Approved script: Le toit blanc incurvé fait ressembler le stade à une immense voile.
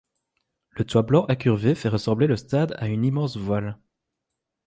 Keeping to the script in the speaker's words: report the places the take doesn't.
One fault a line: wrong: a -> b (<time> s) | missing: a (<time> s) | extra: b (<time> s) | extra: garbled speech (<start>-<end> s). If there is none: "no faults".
no faults